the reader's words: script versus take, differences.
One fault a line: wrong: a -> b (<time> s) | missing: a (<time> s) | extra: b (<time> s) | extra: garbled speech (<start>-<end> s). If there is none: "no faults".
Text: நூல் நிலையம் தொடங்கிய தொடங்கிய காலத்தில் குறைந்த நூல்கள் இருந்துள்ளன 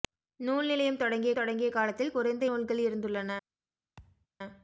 no faults